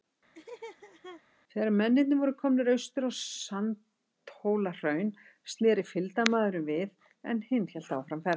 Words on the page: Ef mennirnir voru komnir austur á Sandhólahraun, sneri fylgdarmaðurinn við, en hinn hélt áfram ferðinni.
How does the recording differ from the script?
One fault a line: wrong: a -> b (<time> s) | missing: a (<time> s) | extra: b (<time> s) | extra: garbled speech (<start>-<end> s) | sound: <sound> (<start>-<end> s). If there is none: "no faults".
sound: laugh (0.3-1.2 s)
wrong: Ef -> Þegar (1.5 s)